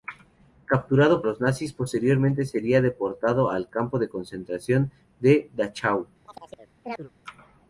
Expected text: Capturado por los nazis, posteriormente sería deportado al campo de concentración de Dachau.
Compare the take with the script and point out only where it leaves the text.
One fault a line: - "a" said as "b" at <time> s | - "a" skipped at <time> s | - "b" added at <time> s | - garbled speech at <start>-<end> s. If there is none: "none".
- "por" skipped at 1.2 s